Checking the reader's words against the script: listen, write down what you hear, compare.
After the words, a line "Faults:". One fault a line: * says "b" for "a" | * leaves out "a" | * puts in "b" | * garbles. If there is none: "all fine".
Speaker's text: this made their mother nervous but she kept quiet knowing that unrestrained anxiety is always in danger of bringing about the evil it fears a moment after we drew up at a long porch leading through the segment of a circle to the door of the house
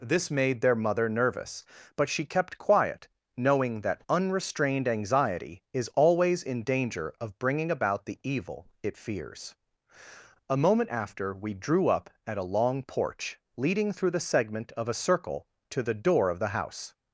this made their mother nervous but she kept quiet knowing that unrestrained anxiety is always in danger of bringing about the evil it fears a moment after we drew up at a long porch leading through the segment of a circle to the door of the house
Faults:
all fine